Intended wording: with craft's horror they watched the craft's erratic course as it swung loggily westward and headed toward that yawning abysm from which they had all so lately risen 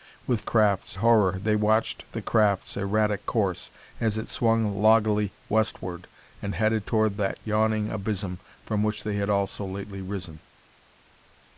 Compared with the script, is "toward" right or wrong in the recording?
right